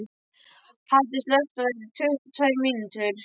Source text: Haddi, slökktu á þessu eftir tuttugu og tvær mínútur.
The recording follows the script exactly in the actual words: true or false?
false